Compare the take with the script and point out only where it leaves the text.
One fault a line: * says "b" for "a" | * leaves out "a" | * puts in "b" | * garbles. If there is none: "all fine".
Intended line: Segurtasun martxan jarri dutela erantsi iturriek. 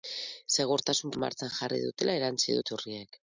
all fine